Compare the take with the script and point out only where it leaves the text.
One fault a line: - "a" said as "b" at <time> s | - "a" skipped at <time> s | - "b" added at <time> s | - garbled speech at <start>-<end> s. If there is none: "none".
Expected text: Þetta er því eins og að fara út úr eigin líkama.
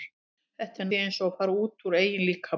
none